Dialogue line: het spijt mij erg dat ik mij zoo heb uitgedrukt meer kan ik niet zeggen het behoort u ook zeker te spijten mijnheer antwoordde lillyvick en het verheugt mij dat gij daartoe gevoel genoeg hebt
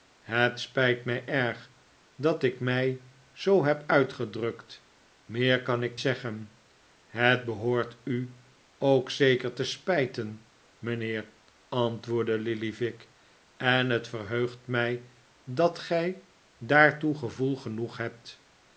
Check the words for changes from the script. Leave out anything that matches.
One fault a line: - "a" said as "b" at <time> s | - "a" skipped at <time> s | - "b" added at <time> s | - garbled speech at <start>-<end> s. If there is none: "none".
- "niet" skipped at 6.0 s